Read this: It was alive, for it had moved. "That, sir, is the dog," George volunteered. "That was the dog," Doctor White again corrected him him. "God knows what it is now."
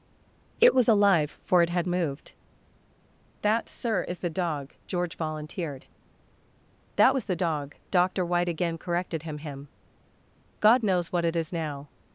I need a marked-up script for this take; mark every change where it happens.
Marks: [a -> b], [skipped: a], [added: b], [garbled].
It was alive, for it had moved. "That, sir, is the dog," George volunteered. "That was the dog," Doctor White again corrected him him. "God knows what it is now."